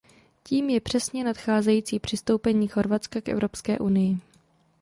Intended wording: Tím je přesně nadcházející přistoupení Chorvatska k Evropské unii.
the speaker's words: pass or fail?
pass